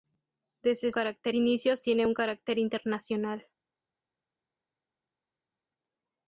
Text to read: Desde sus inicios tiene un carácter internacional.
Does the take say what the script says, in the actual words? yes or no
no